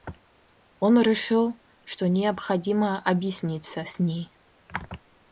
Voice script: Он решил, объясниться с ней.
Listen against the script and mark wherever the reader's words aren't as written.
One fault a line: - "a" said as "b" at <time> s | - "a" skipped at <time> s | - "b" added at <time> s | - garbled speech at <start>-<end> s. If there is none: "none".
- "что необходимо" added at 1.8 s